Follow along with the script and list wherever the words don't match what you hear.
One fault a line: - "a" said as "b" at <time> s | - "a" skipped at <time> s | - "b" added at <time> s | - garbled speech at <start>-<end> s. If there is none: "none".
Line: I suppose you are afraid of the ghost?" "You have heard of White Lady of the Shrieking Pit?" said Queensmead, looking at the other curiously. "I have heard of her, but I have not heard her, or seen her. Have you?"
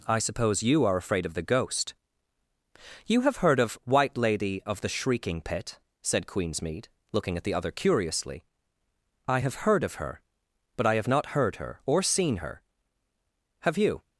none